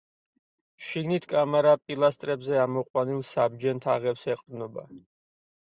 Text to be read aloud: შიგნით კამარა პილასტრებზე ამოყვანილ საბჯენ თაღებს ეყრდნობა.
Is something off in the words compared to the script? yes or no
no